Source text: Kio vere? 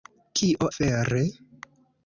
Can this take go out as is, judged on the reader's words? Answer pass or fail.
pass